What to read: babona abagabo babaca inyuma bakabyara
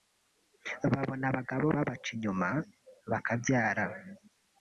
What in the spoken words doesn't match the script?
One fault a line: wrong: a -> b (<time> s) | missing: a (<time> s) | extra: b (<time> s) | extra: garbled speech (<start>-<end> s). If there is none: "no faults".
no faults